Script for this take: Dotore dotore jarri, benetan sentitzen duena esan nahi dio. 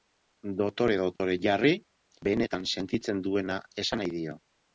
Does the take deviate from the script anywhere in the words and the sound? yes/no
yes